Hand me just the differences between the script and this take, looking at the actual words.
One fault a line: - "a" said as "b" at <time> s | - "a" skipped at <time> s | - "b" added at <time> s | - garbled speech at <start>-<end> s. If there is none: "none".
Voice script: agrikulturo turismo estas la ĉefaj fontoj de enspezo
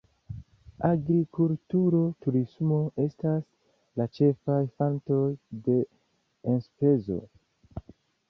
none